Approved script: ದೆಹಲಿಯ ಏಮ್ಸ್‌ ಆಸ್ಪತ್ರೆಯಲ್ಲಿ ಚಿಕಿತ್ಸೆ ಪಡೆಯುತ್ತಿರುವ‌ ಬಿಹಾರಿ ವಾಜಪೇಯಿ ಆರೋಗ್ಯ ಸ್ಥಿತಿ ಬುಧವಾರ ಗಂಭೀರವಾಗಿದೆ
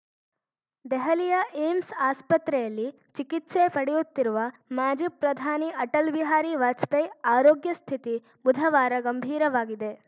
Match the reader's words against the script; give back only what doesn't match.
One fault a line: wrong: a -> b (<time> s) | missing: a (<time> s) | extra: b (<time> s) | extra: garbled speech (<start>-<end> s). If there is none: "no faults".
extra: ಮಾಜಿ ಪ್ರಧಾನಿ ಅಟಲ್ (4.7 s)